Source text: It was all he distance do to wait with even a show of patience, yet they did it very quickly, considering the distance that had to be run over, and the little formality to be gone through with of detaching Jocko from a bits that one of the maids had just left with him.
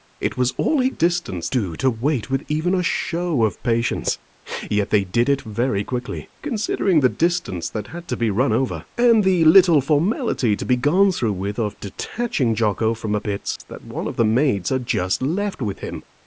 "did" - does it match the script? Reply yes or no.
yes